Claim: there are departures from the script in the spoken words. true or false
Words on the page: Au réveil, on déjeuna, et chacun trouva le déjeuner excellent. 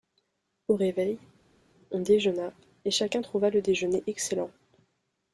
false